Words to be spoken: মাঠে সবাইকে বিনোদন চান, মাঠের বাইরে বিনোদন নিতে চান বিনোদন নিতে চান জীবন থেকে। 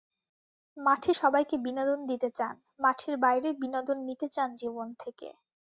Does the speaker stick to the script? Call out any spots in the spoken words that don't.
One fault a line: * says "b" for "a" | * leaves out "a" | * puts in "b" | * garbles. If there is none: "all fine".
* puts in "দিতে"
* leaves out "বিনোদন নিতে চান"